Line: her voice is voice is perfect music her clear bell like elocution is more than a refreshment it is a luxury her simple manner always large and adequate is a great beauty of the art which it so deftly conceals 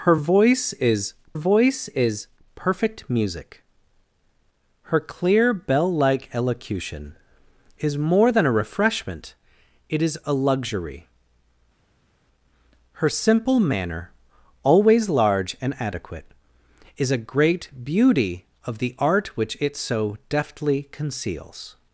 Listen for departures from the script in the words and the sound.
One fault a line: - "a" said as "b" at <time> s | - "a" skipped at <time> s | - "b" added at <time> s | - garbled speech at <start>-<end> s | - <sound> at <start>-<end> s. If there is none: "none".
none